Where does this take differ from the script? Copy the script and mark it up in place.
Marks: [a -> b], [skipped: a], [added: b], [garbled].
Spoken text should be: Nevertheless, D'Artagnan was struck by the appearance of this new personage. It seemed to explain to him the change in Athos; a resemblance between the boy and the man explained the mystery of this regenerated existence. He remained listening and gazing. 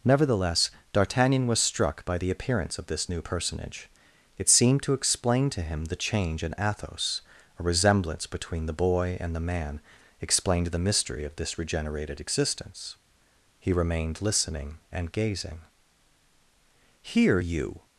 Nevertheless, D'Artagnan was struck by the appearance of this new personage. It seemed to explain to him the change in Athos; a resemblance between the boy and the man explained the mystery of this regenerated existence. He remained listening and gazing. [added: Here you]